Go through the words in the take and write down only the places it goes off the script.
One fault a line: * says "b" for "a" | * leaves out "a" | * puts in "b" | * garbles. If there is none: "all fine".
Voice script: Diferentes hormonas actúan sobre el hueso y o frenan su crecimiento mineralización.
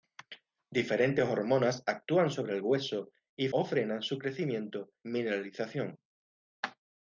all fine